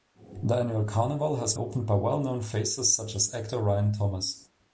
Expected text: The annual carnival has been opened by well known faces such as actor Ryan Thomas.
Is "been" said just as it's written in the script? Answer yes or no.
no